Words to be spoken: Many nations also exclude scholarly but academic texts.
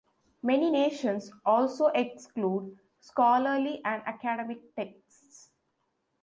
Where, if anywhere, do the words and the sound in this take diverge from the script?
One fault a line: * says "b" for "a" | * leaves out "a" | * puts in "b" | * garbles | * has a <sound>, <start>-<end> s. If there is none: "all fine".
* says "and" for "but"